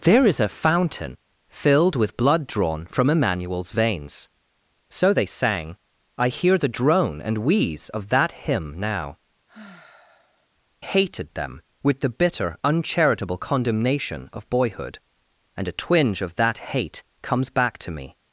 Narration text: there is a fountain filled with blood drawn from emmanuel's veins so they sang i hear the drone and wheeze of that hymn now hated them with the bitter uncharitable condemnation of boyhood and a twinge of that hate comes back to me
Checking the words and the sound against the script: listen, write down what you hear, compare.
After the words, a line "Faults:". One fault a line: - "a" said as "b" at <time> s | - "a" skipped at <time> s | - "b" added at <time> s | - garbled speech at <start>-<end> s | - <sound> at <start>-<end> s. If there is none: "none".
there is a fountain filled with blood drawn from emmanuel's veins so they sang i hear the drone and wheeze of that hymn now hated them with the bitter uncharitable condemnation of boyhood and a twinge of that hate comes back to me
Faults:
- sigh at 9.5-10.5 s